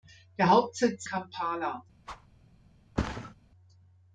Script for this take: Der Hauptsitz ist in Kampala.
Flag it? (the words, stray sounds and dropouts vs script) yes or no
yes